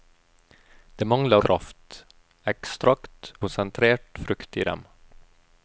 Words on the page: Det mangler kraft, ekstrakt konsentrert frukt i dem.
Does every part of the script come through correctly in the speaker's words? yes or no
yes